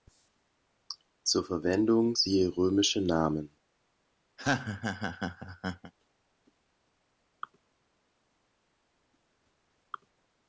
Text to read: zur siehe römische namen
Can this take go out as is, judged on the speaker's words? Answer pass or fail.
fail